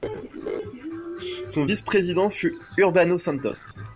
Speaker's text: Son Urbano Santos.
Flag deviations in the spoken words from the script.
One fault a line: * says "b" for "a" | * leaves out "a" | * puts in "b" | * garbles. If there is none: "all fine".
* puts in "vice président fut"